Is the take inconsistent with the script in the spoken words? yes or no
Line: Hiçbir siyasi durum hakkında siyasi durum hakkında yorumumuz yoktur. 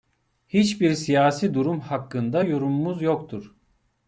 yes